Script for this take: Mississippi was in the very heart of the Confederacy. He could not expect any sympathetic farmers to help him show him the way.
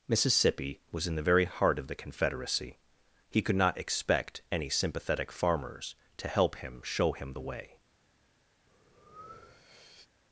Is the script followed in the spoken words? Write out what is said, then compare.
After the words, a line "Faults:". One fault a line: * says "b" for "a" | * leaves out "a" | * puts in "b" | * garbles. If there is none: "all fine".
Mississippi was in the very heart of the Confederacy. He could not expect any sympathetic farmers to help him show him the way.
Faults:
all fine